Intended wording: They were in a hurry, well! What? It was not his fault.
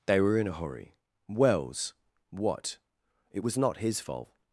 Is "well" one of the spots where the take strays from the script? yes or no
yes